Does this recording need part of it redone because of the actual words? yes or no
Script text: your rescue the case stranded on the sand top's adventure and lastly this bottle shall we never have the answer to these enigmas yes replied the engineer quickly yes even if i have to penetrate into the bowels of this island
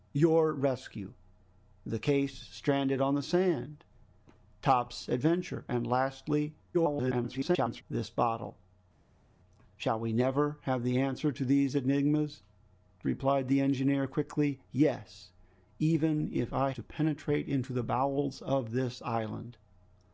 yes